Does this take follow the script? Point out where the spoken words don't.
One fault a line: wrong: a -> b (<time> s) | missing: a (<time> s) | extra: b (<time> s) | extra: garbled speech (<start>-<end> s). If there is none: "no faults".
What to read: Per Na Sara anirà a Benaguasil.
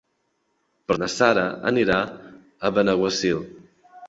no faults